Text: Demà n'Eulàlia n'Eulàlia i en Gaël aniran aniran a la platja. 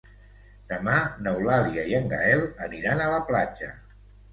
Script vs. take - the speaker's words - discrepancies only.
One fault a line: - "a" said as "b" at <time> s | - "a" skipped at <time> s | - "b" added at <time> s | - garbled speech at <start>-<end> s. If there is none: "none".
- "n'Eulàlia" skipped at 1.9 s
- "aniran" skipped at 3.1 s